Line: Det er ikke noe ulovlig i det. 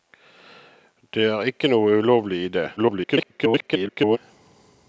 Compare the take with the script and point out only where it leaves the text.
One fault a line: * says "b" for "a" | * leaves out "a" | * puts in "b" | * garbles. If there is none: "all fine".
* garbles